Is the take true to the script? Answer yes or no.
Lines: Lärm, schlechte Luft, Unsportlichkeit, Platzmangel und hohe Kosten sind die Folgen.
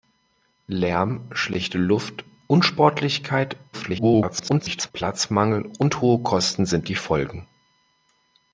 no